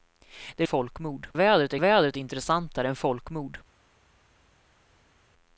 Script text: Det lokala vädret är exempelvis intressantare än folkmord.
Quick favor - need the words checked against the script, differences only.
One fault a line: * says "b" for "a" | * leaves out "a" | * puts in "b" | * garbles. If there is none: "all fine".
* says "folkmord" for "lokala"
* says "vädret" for "exempelvis"